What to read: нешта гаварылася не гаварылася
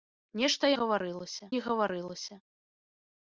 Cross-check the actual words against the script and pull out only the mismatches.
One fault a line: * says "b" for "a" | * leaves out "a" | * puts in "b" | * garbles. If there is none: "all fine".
all fine